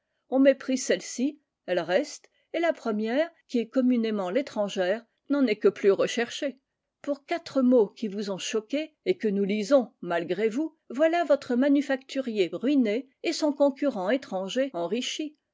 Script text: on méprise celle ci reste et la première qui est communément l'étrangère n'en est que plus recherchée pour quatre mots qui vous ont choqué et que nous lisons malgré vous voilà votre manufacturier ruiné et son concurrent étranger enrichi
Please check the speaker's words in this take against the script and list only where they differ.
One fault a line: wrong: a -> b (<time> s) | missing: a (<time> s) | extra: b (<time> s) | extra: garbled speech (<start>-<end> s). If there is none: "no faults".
extra: elle (1.7 s)